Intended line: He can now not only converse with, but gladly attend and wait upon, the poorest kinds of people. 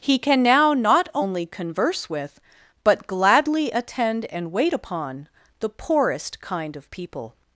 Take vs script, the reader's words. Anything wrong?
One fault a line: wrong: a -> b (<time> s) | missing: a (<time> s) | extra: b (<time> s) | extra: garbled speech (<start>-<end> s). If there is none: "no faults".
wrong: kinds -> kind (6.4 s)